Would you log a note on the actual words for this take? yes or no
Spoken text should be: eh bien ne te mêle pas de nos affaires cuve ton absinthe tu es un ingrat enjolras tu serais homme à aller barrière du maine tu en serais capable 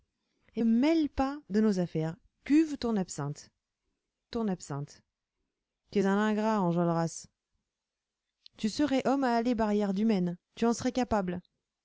yes